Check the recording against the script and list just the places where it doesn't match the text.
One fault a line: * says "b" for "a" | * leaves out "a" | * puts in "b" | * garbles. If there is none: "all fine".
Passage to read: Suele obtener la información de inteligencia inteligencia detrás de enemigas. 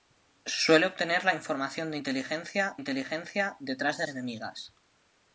all fine